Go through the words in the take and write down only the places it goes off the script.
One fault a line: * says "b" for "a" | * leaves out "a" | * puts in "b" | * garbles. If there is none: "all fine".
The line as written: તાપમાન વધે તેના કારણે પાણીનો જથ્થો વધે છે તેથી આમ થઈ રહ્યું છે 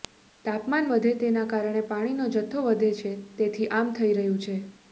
all fine